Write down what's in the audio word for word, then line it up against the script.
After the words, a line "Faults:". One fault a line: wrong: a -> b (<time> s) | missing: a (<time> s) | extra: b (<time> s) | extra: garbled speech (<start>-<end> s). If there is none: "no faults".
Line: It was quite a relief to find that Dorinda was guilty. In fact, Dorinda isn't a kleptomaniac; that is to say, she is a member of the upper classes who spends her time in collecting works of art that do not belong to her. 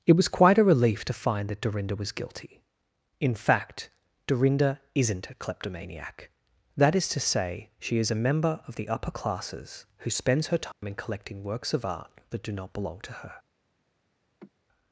It was quite a relief to find that Dorinda was guilty. In fact, Dorinda isn't a kleptomaniac; that is to say, she is a member of the upper classes who spends her time in collecting works of art that do not belong to her.
Faults:
no faults